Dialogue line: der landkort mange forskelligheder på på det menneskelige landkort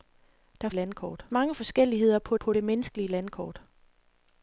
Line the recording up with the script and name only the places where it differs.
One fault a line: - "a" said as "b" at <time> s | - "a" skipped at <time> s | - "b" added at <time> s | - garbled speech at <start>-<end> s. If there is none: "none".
none